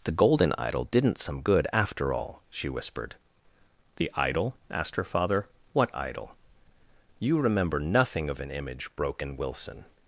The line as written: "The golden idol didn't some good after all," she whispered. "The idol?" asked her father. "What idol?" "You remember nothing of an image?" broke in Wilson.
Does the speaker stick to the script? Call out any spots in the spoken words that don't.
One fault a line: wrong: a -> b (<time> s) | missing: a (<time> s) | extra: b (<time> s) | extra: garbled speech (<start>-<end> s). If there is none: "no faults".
no faults